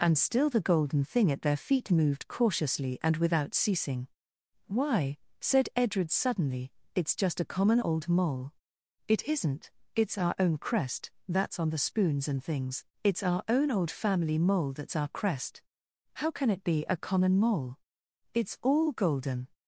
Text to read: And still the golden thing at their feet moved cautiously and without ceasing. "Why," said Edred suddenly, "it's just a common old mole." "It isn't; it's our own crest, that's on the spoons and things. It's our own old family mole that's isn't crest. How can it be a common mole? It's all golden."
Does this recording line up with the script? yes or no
no